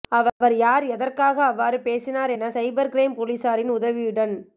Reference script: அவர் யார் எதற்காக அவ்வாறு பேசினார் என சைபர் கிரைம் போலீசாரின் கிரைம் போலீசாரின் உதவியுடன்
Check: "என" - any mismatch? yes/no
no